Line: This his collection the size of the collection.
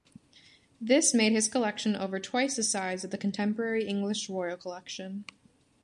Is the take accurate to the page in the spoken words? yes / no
no